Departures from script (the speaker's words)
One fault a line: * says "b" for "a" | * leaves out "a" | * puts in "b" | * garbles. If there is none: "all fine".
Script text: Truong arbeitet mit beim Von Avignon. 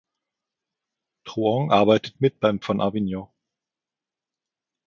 all fine